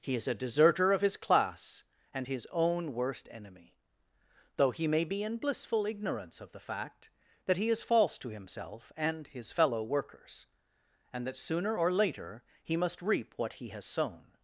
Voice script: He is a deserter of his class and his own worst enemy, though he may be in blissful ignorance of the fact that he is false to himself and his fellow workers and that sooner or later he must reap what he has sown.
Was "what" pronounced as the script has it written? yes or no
yes